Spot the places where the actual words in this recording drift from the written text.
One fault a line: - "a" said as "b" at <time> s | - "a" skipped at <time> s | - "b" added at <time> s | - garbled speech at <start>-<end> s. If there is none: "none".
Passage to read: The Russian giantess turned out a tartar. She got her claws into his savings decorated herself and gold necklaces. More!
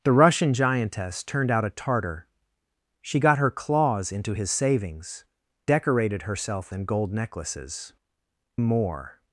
none